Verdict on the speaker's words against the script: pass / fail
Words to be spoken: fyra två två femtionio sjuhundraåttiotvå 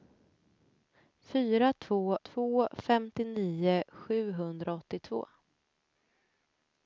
pass